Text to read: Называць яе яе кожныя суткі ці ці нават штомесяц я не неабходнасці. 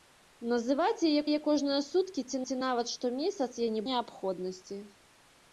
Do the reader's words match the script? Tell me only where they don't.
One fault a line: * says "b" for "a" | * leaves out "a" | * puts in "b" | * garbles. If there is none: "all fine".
all fine